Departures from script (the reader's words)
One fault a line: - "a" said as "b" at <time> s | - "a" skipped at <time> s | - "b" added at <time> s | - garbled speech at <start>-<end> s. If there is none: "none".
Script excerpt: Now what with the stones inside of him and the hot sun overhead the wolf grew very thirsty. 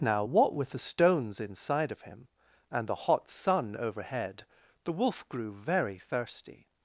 none